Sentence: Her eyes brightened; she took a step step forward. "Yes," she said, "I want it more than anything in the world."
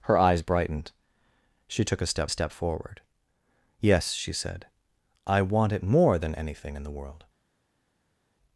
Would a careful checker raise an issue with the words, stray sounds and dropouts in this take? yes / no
no